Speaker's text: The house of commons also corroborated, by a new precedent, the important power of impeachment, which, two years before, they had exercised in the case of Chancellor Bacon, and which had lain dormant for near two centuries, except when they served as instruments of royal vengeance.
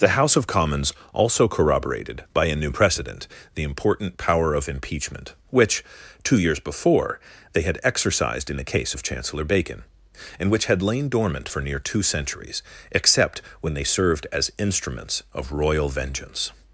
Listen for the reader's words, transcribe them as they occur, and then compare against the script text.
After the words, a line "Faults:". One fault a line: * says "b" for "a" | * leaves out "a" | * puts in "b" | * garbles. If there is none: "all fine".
The house of commons also corroborated, by a new precedent, the important power of impeachment, which, two years before, they had exercised in the case of Chancellor Bacon, and which had lain dormant for near two centuries, except when they served as instruments of royal vengeance.
Faults:
all fine